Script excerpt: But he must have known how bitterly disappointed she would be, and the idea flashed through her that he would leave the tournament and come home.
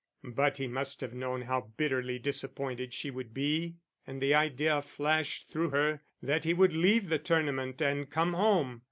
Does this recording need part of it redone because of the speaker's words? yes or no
no